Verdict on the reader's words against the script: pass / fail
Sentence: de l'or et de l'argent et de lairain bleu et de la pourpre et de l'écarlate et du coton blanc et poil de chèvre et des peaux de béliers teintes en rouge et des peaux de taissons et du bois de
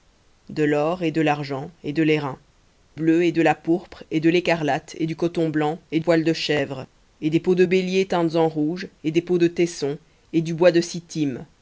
pass